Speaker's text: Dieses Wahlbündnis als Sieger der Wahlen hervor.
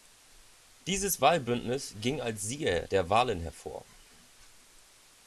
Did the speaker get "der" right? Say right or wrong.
right